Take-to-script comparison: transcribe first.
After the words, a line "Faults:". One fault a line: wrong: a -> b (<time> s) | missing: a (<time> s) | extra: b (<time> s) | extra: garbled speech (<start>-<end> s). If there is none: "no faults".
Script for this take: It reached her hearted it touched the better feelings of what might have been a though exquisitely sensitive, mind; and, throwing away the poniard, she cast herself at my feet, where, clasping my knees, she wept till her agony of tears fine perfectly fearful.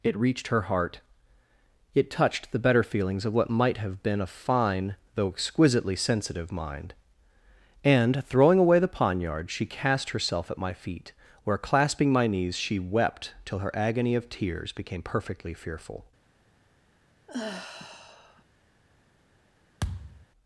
It reached her heart it touched the better feelings of what might have been a fine, though exquisitely sensitive, mind; and, throwing away the poniard, she cast herself at my feet, where, clasping my knees, she wept till her agony of tears became perfectly fearful.
Faults:
wrong: hearted -> heart (0.6 s)
extra: fine (4.3 s)
wrong: fine -> became (14.7 s)